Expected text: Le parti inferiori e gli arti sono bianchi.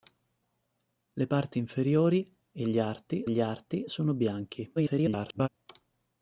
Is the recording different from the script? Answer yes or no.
yes